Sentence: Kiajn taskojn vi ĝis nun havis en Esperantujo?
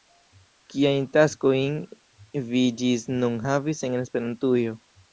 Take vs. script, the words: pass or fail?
pass